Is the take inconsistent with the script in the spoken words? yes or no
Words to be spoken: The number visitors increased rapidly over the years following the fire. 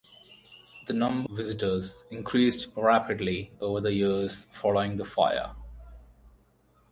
no